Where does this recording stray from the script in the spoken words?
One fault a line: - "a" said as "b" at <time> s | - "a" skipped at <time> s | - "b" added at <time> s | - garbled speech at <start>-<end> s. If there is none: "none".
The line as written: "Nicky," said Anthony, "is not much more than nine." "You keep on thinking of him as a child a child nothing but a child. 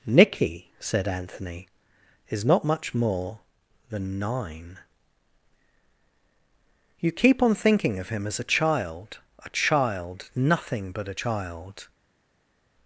none